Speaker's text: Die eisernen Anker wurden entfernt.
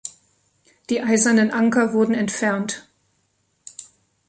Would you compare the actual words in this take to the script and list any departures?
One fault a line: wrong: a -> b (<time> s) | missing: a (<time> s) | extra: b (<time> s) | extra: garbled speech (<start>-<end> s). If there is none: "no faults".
no faults